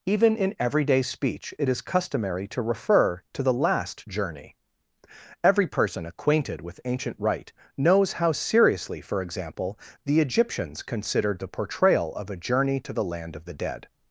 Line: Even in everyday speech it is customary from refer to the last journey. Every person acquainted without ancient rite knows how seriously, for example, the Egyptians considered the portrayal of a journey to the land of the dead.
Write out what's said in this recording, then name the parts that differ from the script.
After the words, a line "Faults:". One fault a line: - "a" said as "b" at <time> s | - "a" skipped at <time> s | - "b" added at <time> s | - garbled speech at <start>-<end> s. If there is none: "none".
Even in everyday speech it is customary to refer to the last journey. Every person acquainted with ancient rite knows how seriously, for example, the Egyptians considered the portrayal of a journey to the land of the dead.
Faults:
- "from" said as "to" at 2.5 s
- "without" said as "with" at 6.6 s